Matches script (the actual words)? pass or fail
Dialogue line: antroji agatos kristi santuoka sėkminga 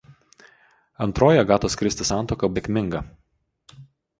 pass